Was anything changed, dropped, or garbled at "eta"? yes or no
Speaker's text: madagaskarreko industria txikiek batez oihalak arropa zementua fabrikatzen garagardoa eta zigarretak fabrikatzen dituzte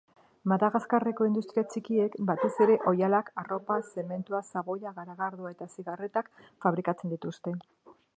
no